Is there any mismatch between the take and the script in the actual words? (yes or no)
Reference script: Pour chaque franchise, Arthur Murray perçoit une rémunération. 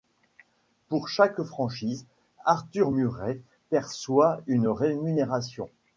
no